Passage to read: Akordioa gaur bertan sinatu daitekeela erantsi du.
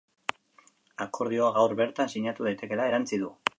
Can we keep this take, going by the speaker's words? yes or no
yes